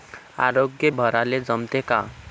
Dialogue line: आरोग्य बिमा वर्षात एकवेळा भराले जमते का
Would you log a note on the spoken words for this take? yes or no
yes